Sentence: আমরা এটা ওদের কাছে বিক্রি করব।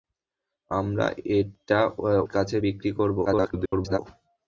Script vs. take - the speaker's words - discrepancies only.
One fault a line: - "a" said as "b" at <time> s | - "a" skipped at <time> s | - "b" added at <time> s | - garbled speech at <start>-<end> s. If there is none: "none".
- "ওদের" skipped at 1.8 s
- garbled speech at 3.2-4.0 s